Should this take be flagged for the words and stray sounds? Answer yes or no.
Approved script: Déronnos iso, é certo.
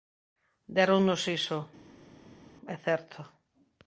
no